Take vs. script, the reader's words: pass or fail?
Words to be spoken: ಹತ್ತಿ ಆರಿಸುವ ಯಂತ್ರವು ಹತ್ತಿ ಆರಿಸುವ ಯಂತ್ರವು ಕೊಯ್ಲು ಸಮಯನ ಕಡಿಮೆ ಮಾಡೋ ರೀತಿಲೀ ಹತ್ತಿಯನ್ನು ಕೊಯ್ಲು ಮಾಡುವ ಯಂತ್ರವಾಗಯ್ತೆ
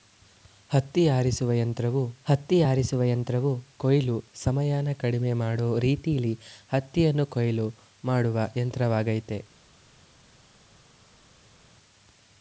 pass